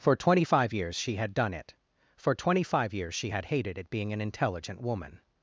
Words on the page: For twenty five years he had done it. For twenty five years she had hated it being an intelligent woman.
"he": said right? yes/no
no